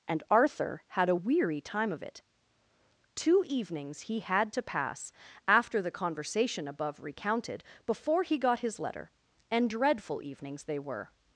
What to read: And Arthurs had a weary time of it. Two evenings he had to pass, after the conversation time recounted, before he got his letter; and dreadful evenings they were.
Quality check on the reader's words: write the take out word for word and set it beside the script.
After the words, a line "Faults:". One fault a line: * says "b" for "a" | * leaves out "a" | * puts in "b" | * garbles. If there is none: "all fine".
And Arthur had a weary time of it. Two evenings he had to pass, after the conversation above recounted, before he got his letter; and dreadful evenings they were.
Faults:
* says "Arthur" for "Arthurs"
* says "above" for "time"